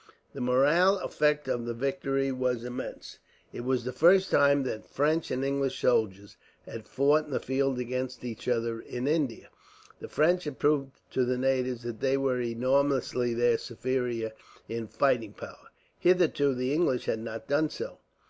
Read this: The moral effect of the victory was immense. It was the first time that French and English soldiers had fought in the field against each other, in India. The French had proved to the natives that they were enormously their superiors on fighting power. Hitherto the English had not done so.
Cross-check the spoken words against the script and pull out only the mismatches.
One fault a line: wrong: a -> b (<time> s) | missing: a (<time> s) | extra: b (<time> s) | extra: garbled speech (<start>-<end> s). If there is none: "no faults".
wrong: on -> in (14.7 s)